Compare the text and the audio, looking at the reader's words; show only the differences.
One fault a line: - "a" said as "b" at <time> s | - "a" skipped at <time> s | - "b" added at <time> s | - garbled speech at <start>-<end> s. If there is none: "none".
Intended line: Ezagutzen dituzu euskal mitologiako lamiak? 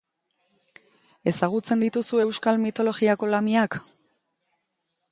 none